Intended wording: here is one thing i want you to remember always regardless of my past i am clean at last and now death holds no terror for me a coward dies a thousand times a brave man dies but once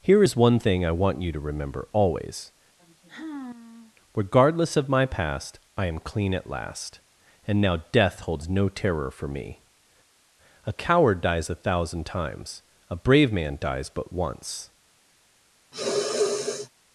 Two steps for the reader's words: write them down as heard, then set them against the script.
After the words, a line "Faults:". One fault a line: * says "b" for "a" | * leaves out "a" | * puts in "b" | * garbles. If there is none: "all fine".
here is one thing i want you to remember always regardless of my past i am clean at last and now death holds no terror for me a coward dies a thousand times a brave man dies but once
Faults:
all fine